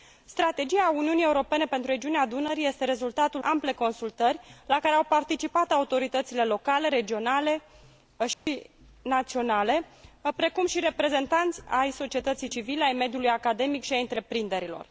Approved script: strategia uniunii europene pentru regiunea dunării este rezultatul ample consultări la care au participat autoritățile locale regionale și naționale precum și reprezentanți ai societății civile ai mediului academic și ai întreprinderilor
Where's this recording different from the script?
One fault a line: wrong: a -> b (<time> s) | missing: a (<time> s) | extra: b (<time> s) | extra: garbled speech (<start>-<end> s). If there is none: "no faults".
no faults